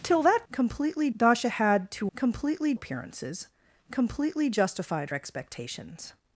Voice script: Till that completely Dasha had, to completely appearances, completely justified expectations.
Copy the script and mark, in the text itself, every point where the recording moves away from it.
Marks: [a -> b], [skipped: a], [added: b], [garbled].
Till that completely Dasha had, to completely appearances, completely justified expectations.